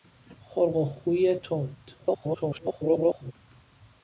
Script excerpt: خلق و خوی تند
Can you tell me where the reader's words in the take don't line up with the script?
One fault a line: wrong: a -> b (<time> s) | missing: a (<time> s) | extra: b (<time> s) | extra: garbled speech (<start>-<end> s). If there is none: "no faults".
extra: garbled speech (2.0-3.3 s)